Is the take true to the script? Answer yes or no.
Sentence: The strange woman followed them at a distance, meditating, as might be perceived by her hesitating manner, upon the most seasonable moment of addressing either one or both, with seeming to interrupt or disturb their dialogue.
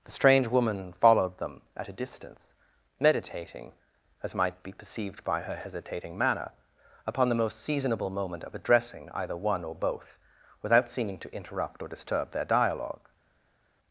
no